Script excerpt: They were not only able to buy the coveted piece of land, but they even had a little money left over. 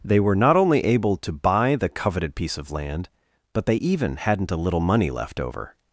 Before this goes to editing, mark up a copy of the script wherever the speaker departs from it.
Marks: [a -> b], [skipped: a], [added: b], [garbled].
They were not only able to buy the coveted piece of land, but they even [had -> hadn't] a little money left over.